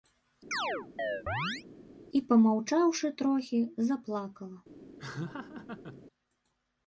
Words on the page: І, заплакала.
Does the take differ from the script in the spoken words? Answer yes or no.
yes